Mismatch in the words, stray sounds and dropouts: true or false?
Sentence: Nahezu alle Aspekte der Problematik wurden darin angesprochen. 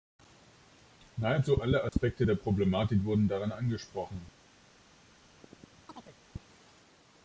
true